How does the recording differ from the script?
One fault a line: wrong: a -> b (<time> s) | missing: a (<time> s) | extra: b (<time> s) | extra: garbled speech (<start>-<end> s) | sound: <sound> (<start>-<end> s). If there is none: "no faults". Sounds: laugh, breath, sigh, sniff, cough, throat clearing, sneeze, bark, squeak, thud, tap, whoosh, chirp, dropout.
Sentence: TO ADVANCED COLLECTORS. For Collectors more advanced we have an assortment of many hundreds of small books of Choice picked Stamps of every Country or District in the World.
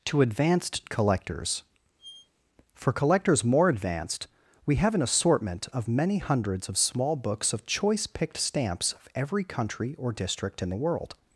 sound: squeak (2.0-2.3 s)